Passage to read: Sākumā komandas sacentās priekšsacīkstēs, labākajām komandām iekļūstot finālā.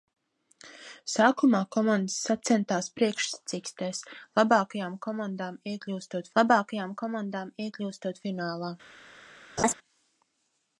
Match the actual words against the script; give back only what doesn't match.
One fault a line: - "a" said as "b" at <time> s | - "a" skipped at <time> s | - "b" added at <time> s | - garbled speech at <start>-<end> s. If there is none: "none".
- "labākajām komandām iekļūstot" added at 6.4 s